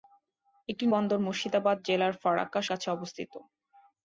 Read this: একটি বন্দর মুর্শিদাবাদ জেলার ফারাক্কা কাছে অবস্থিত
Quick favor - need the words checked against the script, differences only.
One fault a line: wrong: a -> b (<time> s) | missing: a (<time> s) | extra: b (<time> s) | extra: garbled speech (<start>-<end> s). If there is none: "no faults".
no faults